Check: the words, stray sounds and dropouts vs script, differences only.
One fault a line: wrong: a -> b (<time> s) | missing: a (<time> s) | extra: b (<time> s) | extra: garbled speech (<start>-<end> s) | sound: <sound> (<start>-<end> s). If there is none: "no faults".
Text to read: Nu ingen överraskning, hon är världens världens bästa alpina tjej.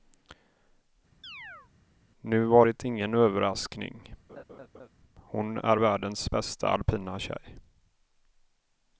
sound: chirp (1.2-1.7 s)
extra: var det (2.5 s)
sound: laugh (4.3-4.9 s)
missing: världens (6.3 s)